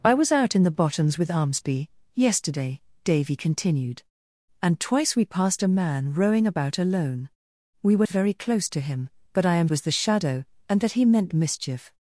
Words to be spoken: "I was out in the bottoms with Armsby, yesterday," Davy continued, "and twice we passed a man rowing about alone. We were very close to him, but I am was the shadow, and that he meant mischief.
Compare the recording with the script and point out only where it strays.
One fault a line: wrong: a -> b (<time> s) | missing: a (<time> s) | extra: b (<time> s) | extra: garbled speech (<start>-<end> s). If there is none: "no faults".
no faults